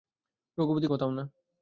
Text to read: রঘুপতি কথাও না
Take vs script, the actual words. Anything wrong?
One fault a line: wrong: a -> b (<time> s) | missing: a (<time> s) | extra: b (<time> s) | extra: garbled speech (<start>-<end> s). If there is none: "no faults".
no faults